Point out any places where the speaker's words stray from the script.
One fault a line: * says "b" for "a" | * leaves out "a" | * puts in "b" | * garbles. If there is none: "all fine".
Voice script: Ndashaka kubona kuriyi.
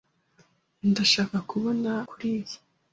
all fine